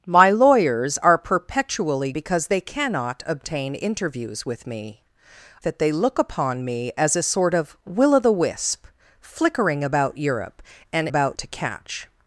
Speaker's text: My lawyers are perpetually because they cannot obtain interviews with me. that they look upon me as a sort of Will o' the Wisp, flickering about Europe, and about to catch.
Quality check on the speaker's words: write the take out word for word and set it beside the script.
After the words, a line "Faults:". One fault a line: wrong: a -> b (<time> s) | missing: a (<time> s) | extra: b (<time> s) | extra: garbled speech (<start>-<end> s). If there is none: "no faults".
My lawyers are perpetually because they cannot obtain interviews with me. that they look upon me as a sort of Will o' the Wisp, flickering about Europe, and about to catch.
Faults:
no faults